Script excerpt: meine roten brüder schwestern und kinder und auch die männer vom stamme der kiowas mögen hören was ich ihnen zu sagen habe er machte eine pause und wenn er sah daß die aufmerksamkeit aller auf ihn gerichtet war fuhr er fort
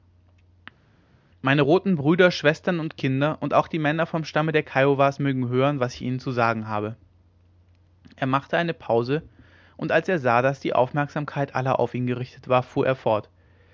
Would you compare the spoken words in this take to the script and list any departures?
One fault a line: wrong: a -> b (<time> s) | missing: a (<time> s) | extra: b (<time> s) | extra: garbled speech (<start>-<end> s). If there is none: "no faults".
wrong: wenn -> als (9.9 s)